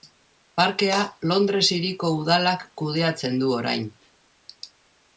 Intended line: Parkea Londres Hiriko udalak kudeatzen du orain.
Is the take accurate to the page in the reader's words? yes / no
yes